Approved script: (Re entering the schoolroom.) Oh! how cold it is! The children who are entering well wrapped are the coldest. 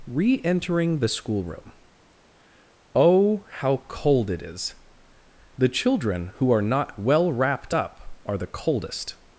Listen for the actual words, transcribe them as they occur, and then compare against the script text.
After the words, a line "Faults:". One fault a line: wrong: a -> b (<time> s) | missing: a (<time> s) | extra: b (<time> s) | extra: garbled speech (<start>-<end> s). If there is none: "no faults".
(Re entering the schoolroom.) Oh! how cold it is! The children who are not well wrapped up are the coldest.
Faults:
wrong: entering -> not (6.6 s)
extra: up (7.7 s)